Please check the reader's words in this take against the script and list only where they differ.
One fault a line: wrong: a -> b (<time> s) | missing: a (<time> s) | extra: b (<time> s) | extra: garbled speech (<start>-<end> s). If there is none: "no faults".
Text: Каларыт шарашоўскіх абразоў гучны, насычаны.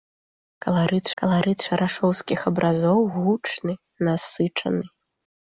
extra: каларыт (1.2 s)